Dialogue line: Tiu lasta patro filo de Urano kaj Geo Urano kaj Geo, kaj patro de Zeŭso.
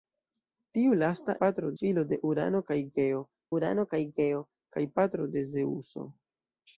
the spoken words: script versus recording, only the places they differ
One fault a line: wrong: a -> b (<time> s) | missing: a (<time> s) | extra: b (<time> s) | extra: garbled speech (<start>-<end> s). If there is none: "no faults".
no faults